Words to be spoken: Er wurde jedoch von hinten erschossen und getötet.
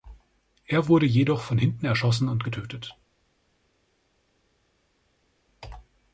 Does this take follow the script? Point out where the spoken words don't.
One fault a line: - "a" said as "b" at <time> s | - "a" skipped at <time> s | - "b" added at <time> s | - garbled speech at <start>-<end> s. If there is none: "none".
none